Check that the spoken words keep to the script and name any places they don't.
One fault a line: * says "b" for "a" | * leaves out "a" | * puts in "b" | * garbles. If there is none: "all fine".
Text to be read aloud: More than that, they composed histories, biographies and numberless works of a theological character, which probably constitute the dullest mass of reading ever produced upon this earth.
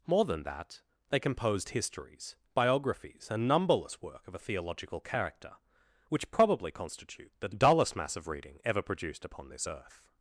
* says "work" for "works"